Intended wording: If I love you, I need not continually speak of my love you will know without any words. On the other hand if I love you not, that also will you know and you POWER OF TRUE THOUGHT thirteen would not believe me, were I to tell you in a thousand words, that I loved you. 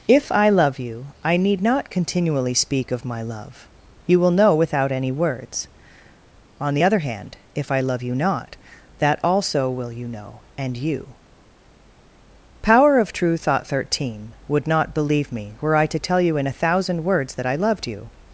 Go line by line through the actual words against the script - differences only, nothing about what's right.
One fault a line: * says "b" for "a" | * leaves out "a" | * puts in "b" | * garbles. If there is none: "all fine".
all fine